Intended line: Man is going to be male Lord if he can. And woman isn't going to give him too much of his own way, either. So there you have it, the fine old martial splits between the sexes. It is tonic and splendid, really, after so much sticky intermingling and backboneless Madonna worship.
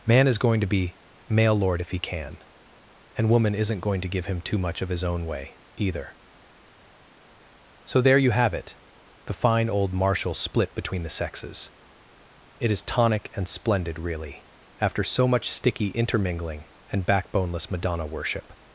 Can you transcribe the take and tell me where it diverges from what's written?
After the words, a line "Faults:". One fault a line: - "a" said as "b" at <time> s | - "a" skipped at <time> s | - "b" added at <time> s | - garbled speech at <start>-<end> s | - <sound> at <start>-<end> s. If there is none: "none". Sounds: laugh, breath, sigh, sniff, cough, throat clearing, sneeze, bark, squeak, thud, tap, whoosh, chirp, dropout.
Man is going to be male Lord if he can. And woman isn't going to give him too much of his own way, either. So there you have it, the fine old martial split between the sexes. It is tonic and splendid, really, after so much sticky intermingling and backboneless Madonna worship.
Faults:
- "splits" said as "split" at 10.3 s